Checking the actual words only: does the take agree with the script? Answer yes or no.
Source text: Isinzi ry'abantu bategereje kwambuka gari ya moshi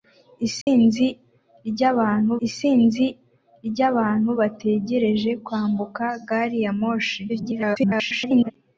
no